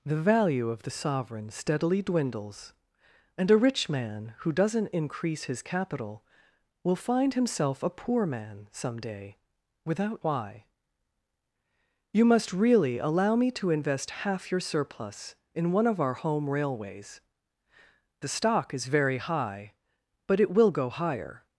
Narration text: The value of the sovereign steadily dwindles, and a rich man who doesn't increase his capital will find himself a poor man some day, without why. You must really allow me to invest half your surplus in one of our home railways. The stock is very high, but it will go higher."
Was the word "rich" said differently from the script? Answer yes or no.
no